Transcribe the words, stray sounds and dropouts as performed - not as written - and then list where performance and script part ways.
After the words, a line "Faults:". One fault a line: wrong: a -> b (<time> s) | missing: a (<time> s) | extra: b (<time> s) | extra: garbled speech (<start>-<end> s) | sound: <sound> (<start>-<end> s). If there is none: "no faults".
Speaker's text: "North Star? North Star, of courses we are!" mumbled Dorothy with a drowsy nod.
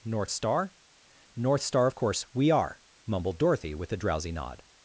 "North Star? North Star, of course we are!" mumbled Dorothy with a drowsy nod.
Faults:
wrong: courses -> course (2.0 s)